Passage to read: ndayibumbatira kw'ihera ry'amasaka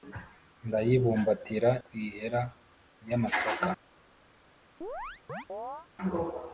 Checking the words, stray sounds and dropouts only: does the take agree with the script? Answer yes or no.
no